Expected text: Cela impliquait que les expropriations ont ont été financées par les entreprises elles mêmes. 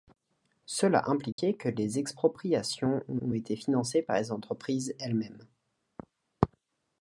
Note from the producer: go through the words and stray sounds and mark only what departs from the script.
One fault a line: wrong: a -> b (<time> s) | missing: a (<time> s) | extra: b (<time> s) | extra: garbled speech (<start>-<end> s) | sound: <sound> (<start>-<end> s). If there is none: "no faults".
sound: dropout (1.3-1.4 s)